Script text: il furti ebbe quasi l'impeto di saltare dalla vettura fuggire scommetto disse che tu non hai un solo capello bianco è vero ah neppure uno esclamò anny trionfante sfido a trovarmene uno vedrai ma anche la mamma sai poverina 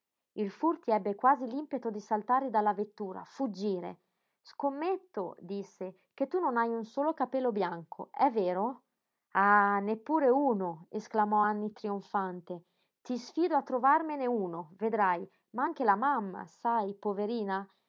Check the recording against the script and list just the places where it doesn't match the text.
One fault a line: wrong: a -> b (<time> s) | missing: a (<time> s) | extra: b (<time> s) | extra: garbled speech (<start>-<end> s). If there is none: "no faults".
extra: ti (13.0 s)